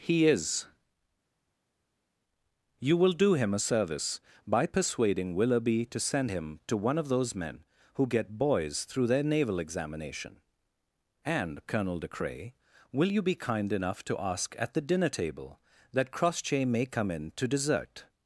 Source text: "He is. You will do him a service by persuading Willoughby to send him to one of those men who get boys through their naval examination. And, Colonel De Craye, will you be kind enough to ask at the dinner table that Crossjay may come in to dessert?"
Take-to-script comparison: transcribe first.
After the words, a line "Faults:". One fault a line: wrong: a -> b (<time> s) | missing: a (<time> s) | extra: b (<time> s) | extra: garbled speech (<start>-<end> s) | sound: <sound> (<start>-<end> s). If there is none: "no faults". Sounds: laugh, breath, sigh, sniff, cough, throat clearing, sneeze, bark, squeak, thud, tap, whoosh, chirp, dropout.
"He is. You will do him a service by persuading Willoughby to send him to one of those men who get boys through their naval examination. And, Colonel De Craye, will you be kind enough to ask at the dinner table that Crossjay may come in to dessert?"
Faults:
no faults